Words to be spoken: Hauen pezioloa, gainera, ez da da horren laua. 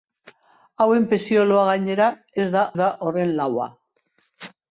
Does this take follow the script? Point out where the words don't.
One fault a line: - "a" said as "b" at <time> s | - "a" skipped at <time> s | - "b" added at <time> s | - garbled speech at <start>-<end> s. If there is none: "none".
none